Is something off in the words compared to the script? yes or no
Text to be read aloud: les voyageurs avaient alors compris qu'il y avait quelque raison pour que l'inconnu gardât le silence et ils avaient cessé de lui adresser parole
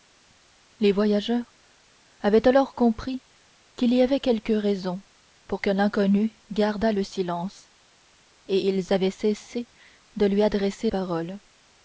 no